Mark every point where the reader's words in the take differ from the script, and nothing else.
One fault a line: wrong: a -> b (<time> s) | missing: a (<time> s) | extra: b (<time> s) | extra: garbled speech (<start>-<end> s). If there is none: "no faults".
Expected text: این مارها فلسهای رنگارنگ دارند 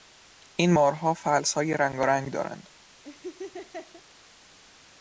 no faults